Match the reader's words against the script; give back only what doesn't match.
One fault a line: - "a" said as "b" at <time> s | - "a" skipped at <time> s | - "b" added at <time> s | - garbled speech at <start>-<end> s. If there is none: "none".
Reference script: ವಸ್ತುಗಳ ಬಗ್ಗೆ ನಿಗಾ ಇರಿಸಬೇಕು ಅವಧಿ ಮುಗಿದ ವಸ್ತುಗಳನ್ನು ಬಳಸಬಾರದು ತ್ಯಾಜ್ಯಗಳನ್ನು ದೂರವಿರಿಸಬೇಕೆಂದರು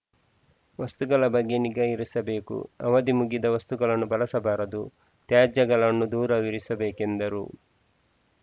none